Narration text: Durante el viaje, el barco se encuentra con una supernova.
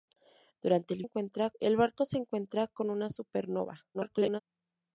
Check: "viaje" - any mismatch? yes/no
yes